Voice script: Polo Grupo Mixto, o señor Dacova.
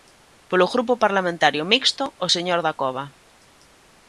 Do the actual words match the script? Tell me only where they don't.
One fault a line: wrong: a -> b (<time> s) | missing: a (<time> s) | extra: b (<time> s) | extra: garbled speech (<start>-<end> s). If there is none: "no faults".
extra: Parlamentario (1.0 s)